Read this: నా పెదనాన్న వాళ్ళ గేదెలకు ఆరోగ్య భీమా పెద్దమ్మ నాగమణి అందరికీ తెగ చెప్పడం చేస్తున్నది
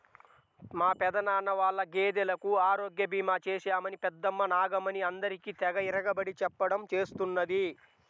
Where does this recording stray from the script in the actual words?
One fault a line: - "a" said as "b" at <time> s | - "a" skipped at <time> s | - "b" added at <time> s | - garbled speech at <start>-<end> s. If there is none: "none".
- "నా" said as "మా" at 0.7 s
- "చేశామని" added at 3.5 s
- "ఇరగబడి" added at 5.9 s